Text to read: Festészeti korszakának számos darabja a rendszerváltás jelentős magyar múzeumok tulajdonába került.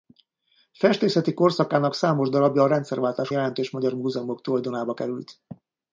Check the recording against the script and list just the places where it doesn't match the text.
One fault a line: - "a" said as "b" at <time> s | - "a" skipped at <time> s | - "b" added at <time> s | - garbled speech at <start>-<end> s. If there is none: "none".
none